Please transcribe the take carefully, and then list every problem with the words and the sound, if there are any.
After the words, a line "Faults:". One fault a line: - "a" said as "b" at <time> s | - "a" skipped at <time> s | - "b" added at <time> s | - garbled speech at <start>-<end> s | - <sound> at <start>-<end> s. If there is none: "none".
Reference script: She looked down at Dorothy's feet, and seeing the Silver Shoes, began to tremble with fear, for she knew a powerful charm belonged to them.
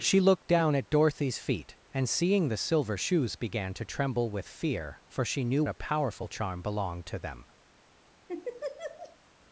She looked down at Dorothy's feet, and seeing the Silver Shoes, began to tremble with fear, for she knew a powerful charm belonged to them.
Faults:
- laugh at 8.3-9.2 s